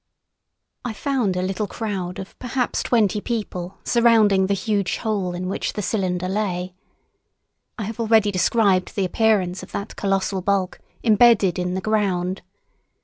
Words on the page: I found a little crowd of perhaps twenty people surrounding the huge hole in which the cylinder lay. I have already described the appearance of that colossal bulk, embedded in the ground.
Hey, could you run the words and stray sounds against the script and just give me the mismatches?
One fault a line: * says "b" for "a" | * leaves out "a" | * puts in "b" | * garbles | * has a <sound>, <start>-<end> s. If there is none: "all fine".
all fine